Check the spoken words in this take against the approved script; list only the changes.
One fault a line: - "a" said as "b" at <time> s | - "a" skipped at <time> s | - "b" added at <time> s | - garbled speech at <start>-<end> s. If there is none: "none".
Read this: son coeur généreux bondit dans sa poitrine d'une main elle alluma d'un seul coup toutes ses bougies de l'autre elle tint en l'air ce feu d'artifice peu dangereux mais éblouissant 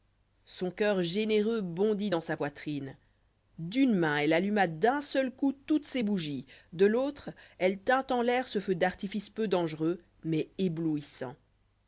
none